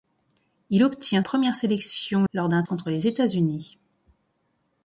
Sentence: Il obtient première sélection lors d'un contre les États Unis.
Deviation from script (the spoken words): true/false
false